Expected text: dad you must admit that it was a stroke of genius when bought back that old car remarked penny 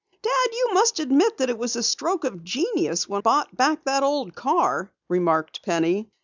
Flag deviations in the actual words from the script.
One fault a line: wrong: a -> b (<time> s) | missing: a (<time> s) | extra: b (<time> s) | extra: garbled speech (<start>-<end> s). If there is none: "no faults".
no faults